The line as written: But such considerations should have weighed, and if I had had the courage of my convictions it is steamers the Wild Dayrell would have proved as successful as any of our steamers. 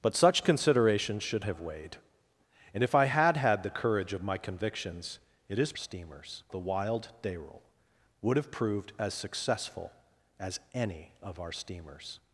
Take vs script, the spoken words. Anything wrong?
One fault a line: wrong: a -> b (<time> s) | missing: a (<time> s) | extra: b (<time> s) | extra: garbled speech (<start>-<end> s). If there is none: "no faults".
no faults